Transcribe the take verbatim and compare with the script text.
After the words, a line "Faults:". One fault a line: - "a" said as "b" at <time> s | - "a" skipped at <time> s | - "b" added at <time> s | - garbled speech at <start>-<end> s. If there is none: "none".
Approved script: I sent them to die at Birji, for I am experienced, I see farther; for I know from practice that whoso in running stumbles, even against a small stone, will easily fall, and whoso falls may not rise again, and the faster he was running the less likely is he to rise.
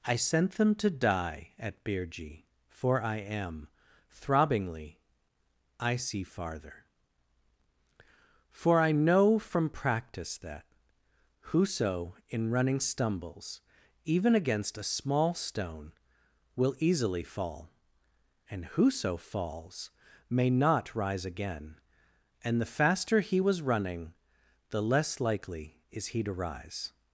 I sent them to die at Birji, for I am throbbingly, I see farther; for I know from practice that whoso in running stumbles, even against a small stone, will easily fall, and whoso falls may not rise again, and the faster he was running the less likely is he to rise.
Faults:
- "experienced" said as "throbbingly" at 4.1 s